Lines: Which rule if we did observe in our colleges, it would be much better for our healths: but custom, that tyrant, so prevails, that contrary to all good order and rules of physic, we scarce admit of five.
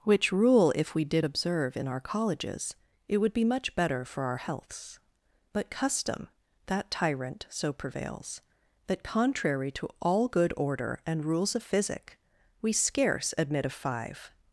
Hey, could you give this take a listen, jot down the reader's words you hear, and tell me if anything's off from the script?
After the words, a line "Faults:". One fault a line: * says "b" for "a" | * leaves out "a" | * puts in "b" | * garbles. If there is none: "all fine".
Which rule if we did observe in our colleges, it would be much better for our healths: but custom, that tyrant, so prevails, that contrary to all good order and rules of physic, we scarce admit of five.
Faults:
all fine